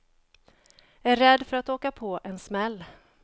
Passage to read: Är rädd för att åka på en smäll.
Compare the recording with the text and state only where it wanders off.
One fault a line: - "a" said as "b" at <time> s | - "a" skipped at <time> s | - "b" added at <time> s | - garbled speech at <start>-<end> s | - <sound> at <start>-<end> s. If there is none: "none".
none